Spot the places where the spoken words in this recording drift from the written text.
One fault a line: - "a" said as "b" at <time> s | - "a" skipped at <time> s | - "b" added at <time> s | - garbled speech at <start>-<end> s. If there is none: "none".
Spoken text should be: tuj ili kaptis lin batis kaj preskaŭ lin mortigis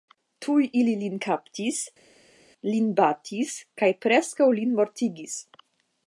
- "lin" added at 1.0 s